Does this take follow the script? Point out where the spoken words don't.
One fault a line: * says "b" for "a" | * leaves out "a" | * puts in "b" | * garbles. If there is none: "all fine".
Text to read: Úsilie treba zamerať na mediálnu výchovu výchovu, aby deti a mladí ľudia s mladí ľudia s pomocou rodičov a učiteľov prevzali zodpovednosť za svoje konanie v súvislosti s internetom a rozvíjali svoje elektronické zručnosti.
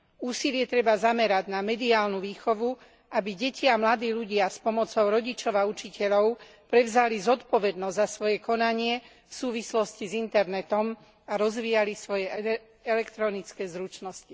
* leaves out "výchovu"
* leaves out "mladí ľudia s"